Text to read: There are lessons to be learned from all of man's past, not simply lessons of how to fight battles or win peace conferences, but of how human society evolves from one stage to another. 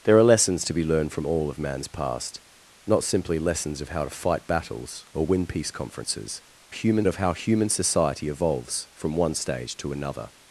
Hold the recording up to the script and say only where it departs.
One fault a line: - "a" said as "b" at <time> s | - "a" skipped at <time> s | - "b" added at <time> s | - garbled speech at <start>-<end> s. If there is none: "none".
- "but" said as "human" at 6.7 s